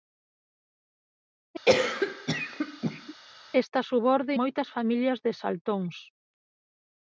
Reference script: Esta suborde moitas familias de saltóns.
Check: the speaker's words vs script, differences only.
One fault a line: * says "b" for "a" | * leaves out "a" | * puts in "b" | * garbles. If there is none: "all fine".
all fine